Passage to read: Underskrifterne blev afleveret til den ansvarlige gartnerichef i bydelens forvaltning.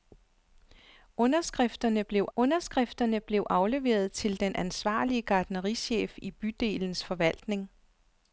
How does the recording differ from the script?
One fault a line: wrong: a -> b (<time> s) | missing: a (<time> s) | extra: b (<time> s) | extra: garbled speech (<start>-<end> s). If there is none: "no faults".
extra: underskrifterne blev (2.4 s)